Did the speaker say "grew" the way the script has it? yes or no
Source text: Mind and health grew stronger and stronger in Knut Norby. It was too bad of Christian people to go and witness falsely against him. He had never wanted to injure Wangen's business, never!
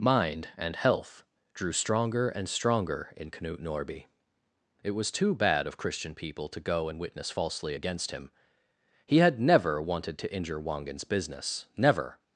no